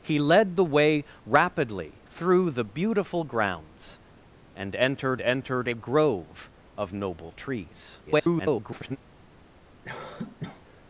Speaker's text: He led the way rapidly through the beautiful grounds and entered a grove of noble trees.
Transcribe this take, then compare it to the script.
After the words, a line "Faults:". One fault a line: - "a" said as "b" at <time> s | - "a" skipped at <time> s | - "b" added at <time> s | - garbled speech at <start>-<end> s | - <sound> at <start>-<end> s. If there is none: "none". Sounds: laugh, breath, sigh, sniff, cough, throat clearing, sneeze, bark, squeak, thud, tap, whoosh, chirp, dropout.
He led the way rapidly through the beautiful grounds and entered entered a grove of noble trees. [garbled]
Faults:
- "entered" added at 5.2 s
- garbled speech at 8.0-9.0 s
- cough at 9.8-10.8 s